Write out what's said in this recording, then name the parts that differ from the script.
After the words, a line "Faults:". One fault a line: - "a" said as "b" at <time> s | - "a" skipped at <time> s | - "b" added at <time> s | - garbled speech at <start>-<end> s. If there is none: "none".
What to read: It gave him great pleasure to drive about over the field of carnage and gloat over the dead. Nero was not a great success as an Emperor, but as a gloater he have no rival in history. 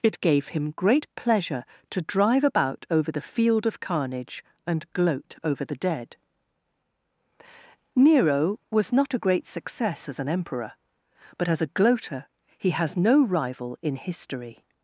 It gave him great pleasure to drive about over the field of carnage and gloat over the dead. Nero was not a great success as an Emperor, but as a gloater he has no rival in history.
Faults:
- "have" said as "has" at 12.7 s